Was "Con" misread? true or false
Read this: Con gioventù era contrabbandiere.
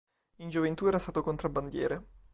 true